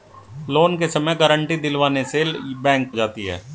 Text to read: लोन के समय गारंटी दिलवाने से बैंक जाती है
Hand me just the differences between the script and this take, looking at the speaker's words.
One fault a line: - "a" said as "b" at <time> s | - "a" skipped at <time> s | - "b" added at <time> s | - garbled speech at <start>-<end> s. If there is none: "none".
none